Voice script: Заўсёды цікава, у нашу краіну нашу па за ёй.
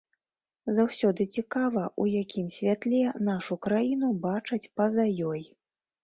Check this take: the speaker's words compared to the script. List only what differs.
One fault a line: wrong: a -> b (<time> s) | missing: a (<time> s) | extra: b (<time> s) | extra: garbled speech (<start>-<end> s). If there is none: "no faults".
extra: якім святле (2.2 s)
wrong: нашу -> бачаць (4.2 s)